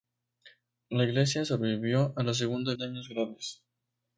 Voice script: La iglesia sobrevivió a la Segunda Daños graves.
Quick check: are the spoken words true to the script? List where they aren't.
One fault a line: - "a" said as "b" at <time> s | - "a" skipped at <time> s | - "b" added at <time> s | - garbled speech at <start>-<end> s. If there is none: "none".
none